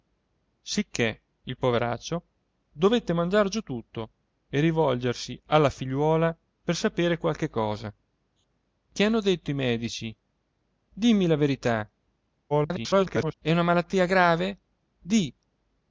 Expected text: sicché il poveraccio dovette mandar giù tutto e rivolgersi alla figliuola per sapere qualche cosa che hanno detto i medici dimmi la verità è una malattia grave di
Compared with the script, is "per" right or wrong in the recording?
right